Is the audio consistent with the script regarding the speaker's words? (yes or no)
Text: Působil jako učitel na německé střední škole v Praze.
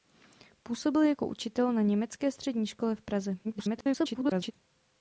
no